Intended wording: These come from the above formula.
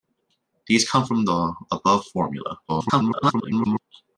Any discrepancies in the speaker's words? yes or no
yes